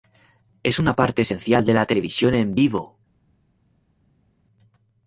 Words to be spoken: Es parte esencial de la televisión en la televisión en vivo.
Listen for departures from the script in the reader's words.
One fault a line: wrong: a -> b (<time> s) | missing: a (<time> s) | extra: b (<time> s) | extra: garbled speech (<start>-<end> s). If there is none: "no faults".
extra: una (0.8 s)
missing: la televisión en (2.6 s)